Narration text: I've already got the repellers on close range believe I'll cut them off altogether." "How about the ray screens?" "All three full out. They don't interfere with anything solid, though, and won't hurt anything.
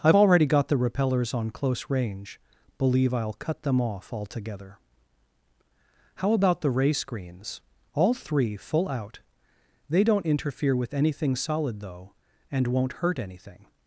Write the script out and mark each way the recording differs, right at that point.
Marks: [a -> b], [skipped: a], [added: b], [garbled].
I've already got the repellers on close range believe I'll cut them off altogether." "How about the ray screens?" "All three full out. They don't interfere with anything solid, though, and won't hurt anything.